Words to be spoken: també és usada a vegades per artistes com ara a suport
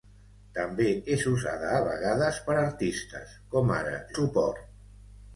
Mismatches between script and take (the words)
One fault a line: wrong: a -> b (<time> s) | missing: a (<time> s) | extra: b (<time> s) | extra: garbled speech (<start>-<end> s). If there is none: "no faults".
no faults